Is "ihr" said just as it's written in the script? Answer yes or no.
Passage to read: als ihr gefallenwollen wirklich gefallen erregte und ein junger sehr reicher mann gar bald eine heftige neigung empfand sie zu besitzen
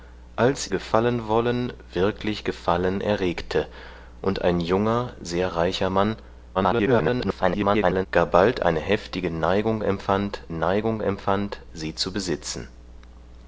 no